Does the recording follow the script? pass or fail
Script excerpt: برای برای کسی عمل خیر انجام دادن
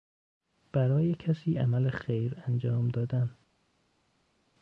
fail